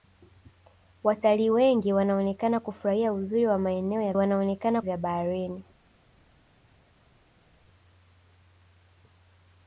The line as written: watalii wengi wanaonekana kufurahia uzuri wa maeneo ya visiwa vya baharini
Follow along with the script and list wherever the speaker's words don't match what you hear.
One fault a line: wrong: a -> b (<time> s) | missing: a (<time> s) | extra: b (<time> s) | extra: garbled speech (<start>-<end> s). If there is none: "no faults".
wrong: visiwa -> wanaonekana (4.1 s)